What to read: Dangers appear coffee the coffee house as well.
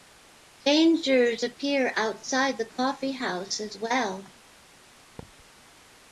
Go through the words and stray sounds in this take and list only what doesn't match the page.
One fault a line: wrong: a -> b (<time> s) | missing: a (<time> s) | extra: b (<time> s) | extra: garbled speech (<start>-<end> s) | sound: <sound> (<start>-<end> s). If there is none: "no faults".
wrong: coffee -> outside (2.0 s)
sound: thud (5.2-5.5 s)